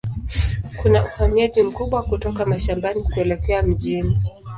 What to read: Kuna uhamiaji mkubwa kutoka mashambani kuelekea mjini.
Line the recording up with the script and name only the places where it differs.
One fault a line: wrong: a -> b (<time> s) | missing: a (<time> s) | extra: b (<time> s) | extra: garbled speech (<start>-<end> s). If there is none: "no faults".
no faults